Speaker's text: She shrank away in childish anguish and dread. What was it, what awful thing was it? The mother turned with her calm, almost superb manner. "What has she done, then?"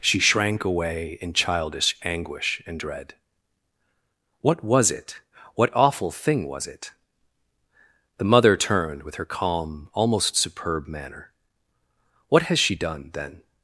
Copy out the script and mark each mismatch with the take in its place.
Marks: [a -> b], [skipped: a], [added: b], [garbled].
She shrank away in childish anguish and dread. What was it, what awful thing was it? The mother turned with her calm, almost superb manner. "What has she done, then?"